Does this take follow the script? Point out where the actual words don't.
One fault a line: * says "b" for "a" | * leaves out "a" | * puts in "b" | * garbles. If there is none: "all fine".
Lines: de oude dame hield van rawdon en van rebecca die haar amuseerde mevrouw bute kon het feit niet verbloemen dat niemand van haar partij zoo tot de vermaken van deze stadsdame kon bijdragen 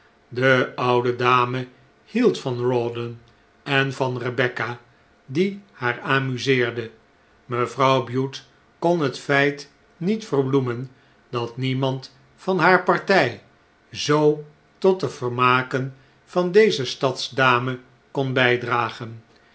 all fine